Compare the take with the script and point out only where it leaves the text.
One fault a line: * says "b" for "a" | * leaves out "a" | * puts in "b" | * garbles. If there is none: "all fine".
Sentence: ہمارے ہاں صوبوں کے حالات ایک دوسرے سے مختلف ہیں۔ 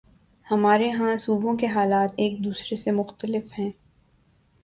all fine